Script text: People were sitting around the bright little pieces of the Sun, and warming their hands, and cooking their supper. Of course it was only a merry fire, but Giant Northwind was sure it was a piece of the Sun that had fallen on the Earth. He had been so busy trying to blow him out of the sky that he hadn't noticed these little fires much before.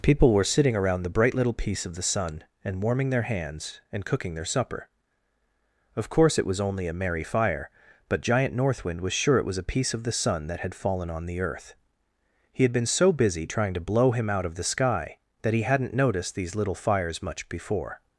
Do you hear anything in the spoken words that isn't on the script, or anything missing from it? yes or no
yes